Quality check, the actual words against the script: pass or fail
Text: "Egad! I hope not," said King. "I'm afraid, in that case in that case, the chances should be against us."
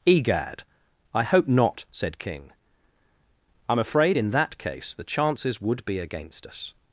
fail